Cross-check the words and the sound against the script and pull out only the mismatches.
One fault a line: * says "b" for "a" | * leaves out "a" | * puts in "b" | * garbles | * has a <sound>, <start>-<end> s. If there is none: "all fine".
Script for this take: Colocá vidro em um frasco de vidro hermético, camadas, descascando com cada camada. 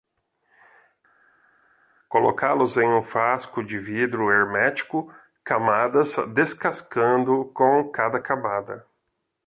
* says "los" for "vidro"